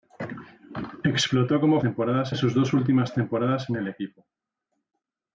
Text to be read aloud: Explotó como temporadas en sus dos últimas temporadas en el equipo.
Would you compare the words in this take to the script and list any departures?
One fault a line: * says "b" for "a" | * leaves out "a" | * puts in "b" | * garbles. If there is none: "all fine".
all fine